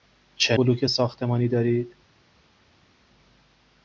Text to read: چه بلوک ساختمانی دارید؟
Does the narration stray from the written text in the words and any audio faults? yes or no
no